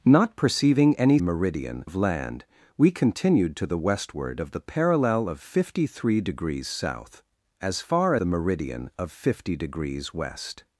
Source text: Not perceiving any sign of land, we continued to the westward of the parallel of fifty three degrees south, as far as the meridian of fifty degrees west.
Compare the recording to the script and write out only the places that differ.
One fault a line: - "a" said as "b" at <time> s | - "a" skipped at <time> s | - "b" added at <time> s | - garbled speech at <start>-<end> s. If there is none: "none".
- "sign" said as "meridian" at 1.2 s
- "as" skipped at 8.2 s